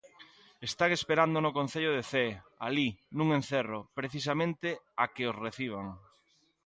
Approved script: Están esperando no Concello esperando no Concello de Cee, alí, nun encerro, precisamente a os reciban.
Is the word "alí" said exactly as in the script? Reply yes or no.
yes